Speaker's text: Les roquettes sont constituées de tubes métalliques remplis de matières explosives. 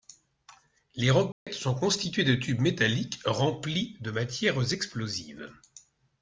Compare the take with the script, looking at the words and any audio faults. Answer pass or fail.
fail